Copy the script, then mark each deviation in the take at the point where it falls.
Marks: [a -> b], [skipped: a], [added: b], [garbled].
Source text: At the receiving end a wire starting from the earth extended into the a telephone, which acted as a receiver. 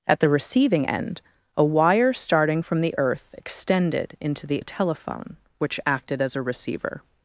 At the receiving end a wire starting from the earth extended into the a telephone, which acted as a receiver.